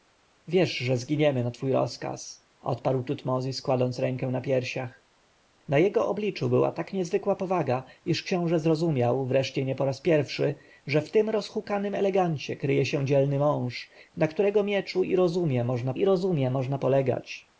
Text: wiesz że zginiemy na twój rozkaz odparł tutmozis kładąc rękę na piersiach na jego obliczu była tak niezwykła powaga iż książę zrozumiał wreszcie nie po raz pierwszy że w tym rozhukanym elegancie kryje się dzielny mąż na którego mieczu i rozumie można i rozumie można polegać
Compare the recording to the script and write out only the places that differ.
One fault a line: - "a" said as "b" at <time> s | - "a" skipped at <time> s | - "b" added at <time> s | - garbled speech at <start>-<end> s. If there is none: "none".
none